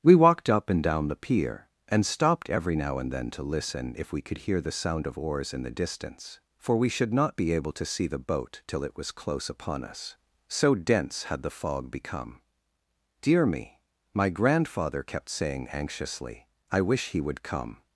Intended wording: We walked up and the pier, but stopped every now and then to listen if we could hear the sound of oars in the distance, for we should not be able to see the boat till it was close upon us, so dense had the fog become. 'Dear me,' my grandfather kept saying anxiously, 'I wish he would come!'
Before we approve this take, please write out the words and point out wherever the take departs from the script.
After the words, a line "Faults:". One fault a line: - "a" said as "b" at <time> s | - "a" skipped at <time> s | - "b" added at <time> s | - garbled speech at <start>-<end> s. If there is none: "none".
We walked up and down the pier, and stopped every now and then to listen if we could hear the sound of oars in the distance, for we should not be able to see the boat till it was close upon us, so dense had the fog become. 'Dear me,' my grandfather kept saying anxiously, 'I wish he would come!'
Faults:
- "down" added at 0.8 s
- "but" said as "and" at 1.9 s